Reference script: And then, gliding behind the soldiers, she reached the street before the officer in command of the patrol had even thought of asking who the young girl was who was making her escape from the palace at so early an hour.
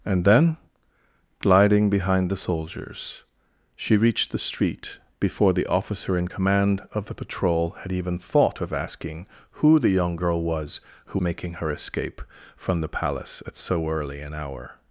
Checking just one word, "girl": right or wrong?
right